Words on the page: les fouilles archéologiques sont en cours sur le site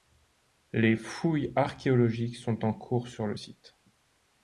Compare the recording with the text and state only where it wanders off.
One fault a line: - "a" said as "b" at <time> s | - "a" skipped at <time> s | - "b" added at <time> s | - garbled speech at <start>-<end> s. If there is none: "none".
none